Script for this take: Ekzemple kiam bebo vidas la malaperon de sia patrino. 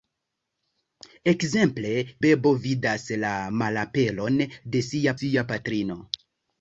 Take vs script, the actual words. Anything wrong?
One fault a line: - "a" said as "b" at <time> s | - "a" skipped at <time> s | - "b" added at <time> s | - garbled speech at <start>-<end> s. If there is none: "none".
- "kiam" skipped at 1.9 s
- "sia" added at 5.2 s